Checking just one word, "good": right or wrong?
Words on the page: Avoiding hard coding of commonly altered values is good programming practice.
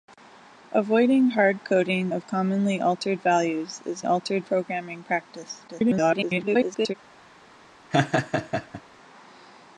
wrong